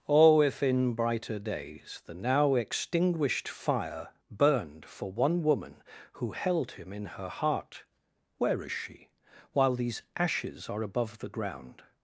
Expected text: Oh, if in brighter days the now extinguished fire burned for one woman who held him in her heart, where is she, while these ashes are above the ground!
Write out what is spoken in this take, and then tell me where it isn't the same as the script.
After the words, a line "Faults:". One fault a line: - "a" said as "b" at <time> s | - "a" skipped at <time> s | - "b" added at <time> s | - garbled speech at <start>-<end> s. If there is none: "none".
Oh, if in brighter days the now extinguished fire burned for one woman who held him in her heart, where is she, while these ashes are above the ground!
Faults:
none